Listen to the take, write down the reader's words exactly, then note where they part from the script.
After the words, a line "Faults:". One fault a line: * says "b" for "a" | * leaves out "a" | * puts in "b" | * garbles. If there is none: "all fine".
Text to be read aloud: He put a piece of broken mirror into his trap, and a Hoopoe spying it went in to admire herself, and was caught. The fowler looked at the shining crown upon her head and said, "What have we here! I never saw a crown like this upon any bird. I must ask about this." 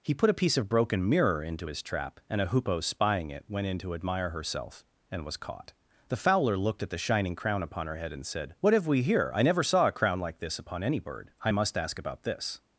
He put a piece of broken mirror into his trap, and a Hoopoe spying it went in to admire herself, and was caught. The fowler looked at the shining crown upon her head and said, "What have we here! I never saw a crown like this upon any bird. I must ask about this."
Faults:
all fine